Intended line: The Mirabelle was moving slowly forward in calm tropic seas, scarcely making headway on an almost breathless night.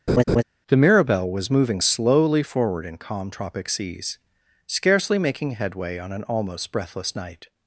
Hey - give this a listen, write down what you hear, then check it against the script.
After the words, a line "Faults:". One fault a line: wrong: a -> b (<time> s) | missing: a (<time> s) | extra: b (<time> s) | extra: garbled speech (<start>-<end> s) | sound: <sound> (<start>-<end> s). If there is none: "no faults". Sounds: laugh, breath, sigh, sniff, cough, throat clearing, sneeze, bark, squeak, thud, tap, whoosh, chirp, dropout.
The Mirabelle was moving slowly forward in calm tropic seas, scarcely making headway on an almost breathless night.
Faults:
sound: laugh (0.1-0.4 s)